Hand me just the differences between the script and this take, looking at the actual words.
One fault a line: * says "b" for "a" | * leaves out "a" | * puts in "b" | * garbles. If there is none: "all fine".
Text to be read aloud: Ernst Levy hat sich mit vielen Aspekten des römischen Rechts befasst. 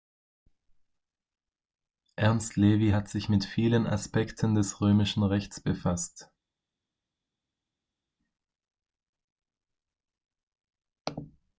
all fine